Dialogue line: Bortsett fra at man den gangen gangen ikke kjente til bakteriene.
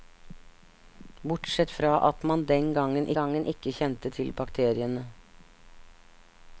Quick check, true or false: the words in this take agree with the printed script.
true